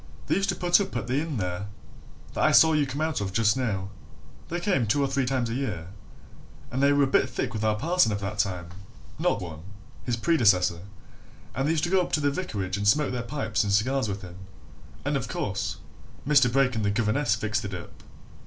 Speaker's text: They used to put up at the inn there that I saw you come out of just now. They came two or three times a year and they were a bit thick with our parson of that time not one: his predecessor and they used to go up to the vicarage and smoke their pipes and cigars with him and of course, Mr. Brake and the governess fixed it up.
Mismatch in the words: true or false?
false